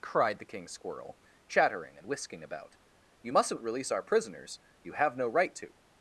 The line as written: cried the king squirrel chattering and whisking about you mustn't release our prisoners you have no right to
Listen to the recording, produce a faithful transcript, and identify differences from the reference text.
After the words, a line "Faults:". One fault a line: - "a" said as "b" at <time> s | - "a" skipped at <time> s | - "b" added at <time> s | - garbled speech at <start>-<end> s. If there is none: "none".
cried the king squirrel chattering and whisking about you mustn't release our prisoners you have no right to
Faults:
none